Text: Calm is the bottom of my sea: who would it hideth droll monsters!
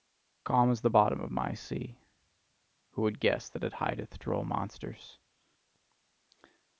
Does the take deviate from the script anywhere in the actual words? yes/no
yes